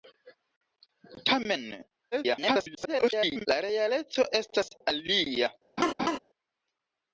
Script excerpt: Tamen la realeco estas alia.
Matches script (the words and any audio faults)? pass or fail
fail